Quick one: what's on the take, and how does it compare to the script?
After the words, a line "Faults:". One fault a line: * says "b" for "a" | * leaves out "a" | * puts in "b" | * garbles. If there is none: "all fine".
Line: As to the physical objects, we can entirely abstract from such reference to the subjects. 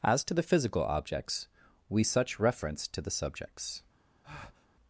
As to the physical objects, we such reference to the subjects.
Faults:
* leaves out "can entirely abstract from"